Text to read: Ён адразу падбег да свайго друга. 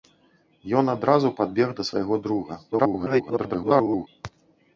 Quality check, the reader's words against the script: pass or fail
fail